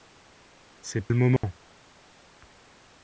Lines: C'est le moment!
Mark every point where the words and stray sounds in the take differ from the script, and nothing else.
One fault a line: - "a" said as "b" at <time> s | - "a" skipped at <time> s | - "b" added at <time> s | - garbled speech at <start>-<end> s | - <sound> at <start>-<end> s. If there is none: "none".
- dropout at 1.4-1.4 s